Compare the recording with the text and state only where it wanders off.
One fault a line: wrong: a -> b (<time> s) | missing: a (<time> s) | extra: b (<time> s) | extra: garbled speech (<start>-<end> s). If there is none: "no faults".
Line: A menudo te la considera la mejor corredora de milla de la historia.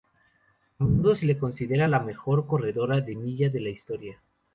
wrong: te -> se (1.1 s)